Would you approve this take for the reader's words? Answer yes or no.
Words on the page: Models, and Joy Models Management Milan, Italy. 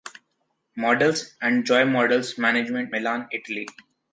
yes